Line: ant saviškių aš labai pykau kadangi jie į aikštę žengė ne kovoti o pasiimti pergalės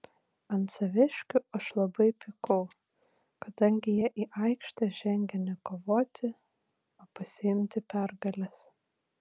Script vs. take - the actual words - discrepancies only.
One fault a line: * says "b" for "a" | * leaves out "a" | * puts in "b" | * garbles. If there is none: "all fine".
all fine